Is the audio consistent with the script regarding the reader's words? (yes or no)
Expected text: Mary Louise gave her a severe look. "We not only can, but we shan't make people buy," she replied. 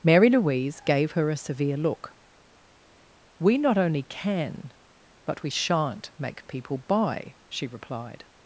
yes